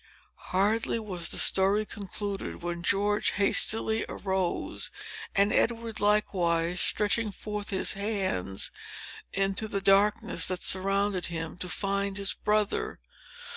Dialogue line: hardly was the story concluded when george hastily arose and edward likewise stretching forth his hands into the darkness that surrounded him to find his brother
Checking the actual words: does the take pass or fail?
pass